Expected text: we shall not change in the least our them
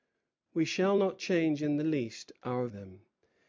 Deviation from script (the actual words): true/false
false